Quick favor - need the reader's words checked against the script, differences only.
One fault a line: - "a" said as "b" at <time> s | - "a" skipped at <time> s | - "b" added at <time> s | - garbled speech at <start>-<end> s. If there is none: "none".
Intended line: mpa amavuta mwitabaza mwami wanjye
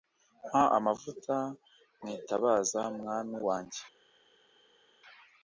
none